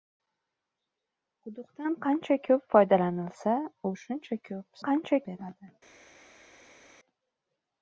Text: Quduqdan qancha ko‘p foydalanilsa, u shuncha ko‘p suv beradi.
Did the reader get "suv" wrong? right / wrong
wrong